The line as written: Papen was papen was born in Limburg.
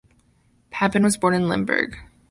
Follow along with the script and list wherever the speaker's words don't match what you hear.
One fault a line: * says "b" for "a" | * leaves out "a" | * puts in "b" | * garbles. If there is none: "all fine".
* leaves out "papen was"